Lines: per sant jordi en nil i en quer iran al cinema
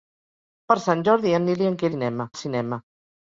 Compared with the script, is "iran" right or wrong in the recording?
wrong